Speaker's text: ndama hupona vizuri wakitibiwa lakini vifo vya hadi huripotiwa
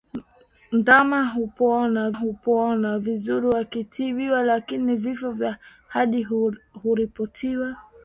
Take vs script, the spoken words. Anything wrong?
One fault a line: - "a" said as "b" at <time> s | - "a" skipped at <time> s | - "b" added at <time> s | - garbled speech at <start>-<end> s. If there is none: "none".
- "hupona" added at 2.1 s